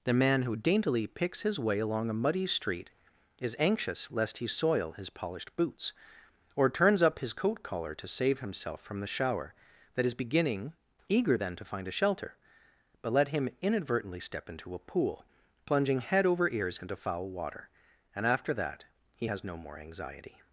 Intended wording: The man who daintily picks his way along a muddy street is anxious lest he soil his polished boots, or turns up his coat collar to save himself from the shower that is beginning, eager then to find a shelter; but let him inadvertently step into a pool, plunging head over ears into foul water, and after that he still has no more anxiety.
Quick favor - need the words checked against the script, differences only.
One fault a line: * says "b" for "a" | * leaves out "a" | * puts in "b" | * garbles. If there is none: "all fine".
* leaves out "still"